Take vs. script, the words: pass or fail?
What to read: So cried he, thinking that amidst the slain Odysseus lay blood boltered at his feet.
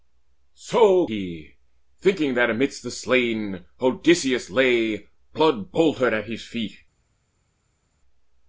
fail